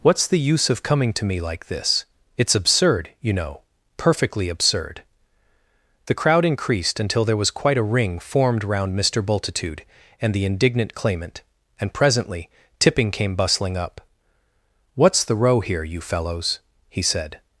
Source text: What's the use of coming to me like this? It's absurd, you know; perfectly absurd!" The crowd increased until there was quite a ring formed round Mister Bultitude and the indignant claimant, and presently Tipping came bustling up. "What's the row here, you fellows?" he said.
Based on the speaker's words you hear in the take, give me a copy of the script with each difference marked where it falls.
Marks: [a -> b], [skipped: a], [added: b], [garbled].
What's the use of coming to me like this? It's absurd, you know; perfectly absurd!" The crowd increased until there was quite a ring formed round Mister Bultitude and the indignant claimant, and presently Tipping came bustling up. "What's the row here, you fellows?" he said.